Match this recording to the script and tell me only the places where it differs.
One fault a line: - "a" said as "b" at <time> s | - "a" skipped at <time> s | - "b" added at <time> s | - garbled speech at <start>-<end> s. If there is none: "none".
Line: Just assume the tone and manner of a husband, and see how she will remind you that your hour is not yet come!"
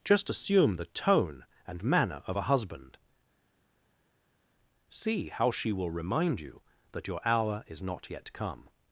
- "and" skipped at 3.0 s